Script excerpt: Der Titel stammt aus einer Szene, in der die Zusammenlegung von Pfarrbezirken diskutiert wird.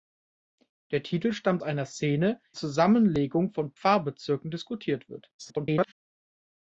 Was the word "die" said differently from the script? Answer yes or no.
yes